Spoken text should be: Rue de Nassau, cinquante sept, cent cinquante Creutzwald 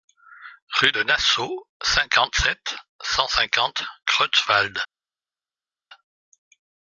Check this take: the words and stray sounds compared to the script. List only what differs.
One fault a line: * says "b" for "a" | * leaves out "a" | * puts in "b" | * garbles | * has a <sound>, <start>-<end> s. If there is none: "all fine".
all fine